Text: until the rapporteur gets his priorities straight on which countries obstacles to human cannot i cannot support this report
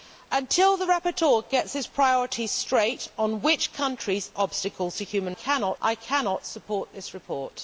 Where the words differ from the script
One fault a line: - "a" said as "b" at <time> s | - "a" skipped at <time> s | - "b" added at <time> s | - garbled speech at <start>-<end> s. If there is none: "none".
none